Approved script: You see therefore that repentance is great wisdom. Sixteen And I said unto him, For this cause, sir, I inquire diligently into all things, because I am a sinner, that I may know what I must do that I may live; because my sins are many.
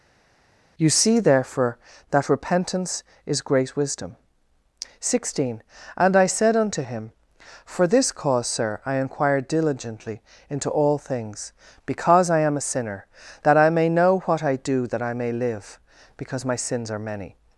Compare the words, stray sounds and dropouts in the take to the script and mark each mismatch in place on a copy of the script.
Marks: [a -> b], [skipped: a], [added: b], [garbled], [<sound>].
You see therefore that repentance is great wisdom. Sixteen And I said unto him, For this cause, sir, I inquire diligently into all things, because I am a sinner, that I may know what I [skipped: must] do that I may live; because my sins are many.